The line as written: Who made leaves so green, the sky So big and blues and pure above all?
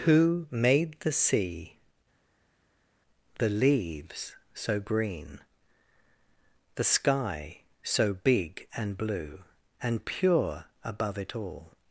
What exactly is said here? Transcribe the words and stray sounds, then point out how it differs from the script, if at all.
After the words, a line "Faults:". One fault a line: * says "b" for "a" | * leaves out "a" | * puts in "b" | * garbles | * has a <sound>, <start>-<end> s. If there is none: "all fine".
Who made the sea, the leaves so green, the sky So big and blue and pure above it all?
Faults:
* puts in "the sea the"
* says "blue" for "blues"
* puts in "it"